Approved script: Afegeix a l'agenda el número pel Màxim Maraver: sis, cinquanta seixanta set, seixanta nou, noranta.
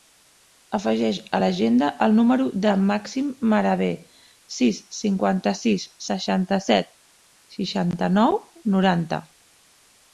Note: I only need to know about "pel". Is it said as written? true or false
false